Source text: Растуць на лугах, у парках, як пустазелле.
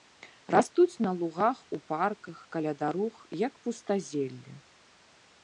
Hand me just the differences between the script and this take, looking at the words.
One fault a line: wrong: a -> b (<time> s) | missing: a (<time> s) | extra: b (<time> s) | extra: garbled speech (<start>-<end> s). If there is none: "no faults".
extra: каля дарог (2.6 s)